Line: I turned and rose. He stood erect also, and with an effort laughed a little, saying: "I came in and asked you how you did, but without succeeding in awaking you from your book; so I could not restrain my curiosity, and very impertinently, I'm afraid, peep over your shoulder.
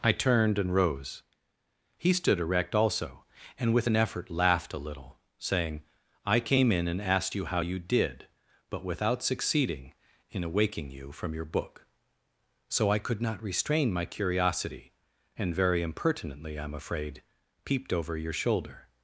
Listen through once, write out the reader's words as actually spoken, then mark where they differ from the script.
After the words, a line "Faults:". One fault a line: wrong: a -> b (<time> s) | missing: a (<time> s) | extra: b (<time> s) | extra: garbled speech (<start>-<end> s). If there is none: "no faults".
I turned and rose. He stood erect also, and with an effort laughed a little, saying: "I came in and asked you how you did, but without succeeding in awaking you from your book; so I could not restrain my curiosity, and very impertinently, I'm afraid, peeped over your shoulder.
Faults:
wrong: peep -> peeped (17.6 s)